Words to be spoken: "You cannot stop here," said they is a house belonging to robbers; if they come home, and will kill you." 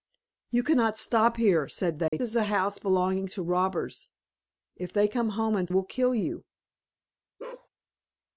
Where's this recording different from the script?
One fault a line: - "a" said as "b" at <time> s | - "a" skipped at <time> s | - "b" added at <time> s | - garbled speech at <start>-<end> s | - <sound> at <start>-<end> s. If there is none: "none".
- dropout at 2.1-2.1 s
- bark at 7.4-7.7 s